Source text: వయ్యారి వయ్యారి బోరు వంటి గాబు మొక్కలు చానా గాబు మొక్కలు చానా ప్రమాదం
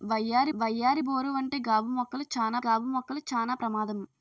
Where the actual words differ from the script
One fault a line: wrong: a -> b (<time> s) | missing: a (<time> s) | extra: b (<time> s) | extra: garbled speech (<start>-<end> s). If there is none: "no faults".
no faults